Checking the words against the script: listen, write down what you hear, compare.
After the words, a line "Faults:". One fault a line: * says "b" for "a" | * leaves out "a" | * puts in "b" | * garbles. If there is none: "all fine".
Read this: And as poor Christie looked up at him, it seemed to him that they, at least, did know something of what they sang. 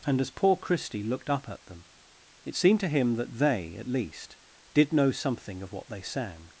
And as poor Christie looked up at them, it seemed to him that they, at least, did know something of what they sang.
Faults:
* says "them" for "him"